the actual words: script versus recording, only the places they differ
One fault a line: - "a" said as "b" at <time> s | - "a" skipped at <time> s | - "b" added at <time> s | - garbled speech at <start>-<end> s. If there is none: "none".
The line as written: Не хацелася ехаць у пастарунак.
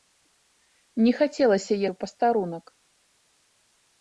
- "ехаць" skipped at 1.7 s